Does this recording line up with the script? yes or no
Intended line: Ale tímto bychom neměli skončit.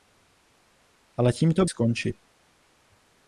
no